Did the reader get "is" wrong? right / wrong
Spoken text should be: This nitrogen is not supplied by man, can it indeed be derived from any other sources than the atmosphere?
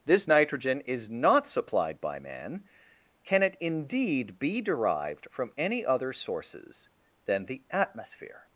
right